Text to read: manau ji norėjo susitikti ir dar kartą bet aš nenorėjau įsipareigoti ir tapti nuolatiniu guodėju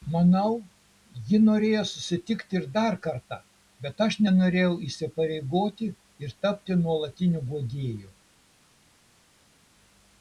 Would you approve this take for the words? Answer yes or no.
yes